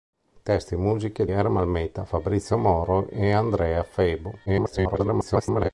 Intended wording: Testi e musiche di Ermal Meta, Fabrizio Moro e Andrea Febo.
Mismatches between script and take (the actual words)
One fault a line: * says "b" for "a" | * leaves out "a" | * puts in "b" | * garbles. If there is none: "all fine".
* leaves out "di"
* garbles